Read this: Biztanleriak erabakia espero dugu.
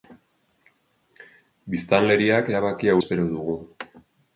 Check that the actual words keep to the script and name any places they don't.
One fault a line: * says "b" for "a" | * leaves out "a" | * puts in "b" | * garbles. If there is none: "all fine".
all fine